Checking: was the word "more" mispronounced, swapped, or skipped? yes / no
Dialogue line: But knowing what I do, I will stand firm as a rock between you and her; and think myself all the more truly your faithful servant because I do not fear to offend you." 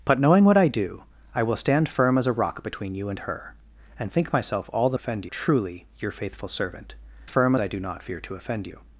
yes